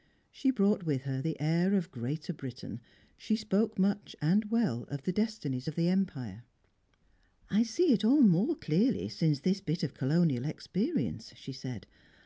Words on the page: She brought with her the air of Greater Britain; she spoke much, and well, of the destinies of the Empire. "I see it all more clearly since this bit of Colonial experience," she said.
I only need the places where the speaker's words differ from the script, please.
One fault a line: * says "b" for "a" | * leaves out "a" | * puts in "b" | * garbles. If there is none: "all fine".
all fine